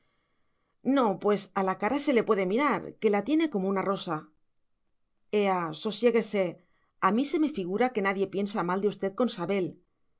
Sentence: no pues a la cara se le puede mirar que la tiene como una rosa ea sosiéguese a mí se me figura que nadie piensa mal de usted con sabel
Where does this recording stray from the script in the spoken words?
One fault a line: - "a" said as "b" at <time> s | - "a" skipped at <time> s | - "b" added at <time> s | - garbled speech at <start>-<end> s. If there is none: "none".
none